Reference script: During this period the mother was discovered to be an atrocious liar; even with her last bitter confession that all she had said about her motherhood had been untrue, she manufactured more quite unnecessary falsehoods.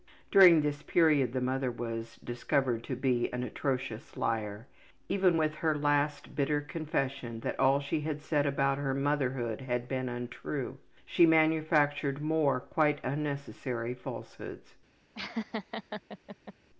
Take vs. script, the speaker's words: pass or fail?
pass